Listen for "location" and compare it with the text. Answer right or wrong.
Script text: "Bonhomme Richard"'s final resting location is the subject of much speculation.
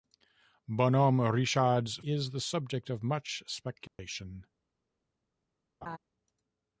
wrong